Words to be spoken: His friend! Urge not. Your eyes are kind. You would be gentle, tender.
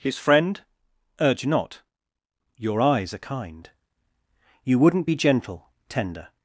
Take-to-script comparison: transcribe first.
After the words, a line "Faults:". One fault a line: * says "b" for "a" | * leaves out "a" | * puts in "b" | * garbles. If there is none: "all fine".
His friend! Urge not. Your eyes are kind. You wouldn't be gentle, tender.
Faults:
* says "wouldn't" for "would"